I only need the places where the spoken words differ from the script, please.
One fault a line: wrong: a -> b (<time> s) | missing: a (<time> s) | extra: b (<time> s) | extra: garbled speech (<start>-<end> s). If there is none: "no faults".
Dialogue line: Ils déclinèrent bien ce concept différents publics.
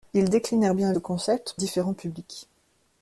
no faults